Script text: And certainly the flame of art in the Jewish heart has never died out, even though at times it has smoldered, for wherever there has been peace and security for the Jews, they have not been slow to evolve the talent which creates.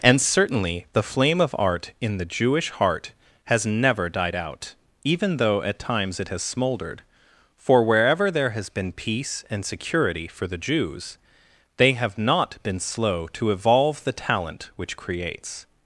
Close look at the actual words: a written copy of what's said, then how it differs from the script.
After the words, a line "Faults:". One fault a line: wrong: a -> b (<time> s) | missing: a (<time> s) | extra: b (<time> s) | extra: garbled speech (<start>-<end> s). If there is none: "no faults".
And certainly the flame of art in the Jewish heart has never died out, even though at times it has smoldered, for wherever there has been peace and security for the Jews, they have not been slow to evolve the talent which creates.
Faults:
no faults